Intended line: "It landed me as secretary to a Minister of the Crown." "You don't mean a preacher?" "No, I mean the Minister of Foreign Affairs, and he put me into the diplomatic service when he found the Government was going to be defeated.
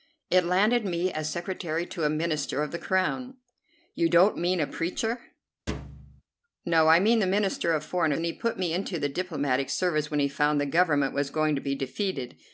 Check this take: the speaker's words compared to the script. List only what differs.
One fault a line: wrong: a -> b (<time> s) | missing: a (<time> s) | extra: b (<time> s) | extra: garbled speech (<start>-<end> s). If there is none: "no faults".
missing: Affairs (8.1 s)